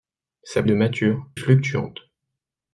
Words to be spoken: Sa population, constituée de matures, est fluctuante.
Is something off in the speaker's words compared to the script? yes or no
yes